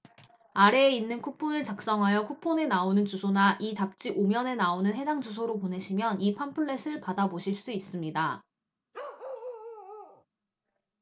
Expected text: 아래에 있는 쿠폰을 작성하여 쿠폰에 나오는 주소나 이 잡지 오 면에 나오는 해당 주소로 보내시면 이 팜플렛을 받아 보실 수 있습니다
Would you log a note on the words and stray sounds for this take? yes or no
yes